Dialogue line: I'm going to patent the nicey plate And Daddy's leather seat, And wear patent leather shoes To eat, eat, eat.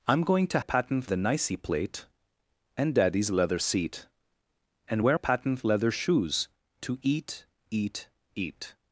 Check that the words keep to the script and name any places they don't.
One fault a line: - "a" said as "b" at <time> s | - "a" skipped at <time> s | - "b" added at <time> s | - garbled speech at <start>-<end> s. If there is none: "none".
none